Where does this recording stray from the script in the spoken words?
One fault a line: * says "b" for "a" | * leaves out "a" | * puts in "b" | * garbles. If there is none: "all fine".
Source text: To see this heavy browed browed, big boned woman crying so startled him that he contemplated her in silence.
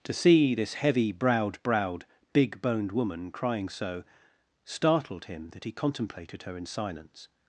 all fine